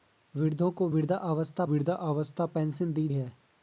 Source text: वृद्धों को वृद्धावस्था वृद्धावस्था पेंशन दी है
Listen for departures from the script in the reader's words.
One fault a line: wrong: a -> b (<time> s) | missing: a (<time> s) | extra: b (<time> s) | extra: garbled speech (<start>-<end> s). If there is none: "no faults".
no faults